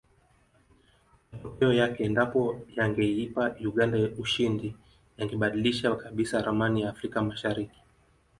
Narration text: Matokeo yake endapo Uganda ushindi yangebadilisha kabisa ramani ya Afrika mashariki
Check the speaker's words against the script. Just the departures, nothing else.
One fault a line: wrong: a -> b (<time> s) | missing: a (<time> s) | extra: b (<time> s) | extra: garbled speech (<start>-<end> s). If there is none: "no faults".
extra: yangeipa (2.8 s)